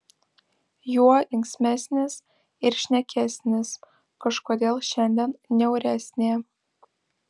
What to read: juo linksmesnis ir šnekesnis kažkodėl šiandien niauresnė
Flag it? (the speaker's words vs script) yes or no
no